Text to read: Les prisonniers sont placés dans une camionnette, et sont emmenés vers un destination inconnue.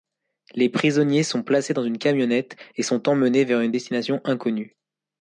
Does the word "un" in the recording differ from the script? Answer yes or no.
yes